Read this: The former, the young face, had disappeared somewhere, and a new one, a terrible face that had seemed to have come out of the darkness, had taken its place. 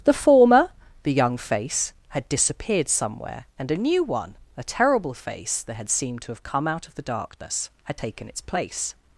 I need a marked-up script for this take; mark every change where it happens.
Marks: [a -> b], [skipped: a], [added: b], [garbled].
The former, the young face, had disappeared somewhere, and a new one, a terrible face that had seemed to have come out of the darkness, had taken its place.